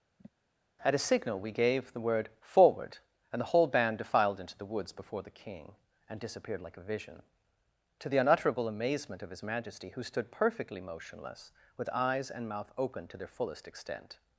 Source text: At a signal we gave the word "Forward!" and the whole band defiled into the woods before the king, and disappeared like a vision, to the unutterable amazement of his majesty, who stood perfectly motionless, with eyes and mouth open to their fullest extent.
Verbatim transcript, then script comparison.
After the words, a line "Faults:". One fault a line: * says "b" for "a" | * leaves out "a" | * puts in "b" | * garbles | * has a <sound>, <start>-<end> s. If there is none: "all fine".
At a signal we gave the word "Forward!" and the whole band defiled into the woods before the king, and disappeared like a vision, to the unutterable amazement of his majesty, who stood perfectly motionless, with eyes and mouth open to their fullest extent.
Faults:
* has a sigh, 0.2-0.3 s